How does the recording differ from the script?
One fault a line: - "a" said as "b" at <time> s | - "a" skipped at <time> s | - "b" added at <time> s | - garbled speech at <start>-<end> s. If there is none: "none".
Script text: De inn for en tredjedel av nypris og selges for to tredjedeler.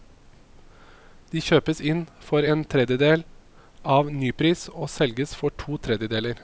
- "kjøpes" added at 1.4 s